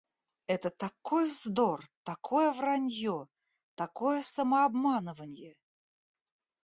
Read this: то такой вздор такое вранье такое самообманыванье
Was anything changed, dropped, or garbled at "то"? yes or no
yes